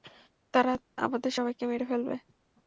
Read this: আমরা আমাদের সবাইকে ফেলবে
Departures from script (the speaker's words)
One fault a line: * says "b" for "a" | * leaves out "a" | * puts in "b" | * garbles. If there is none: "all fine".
* says "তারা" for "আমরা"
* puts in "মেরে"